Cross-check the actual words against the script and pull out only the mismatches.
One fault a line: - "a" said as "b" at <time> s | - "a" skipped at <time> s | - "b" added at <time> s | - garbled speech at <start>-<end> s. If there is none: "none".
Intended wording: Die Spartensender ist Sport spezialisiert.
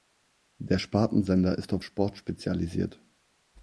- "Die" said as "Der" at 0.6 s
- "auf" added at 1.7 s